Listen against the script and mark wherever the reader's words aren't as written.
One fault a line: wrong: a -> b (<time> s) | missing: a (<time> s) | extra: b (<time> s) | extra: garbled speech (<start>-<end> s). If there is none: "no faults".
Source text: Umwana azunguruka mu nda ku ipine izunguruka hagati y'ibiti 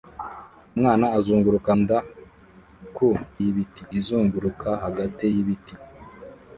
missing: mu (1.7 s)
wrong: ipine -> y'ibiti (3.4 s)